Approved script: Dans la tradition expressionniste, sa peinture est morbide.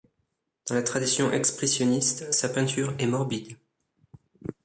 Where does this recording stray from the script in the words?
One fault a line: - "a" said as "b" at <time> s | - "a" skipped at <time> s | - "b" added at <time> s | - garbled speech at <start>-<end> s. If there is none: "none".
none